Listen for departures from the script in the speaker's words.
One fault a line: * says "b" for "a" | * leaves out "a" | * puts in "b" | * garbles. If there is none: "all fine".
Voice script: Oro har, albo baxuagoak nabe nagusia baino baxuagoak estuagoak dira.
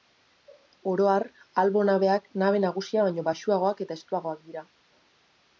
* says "nabeak" for "baxuagoak"
* puts in "eta"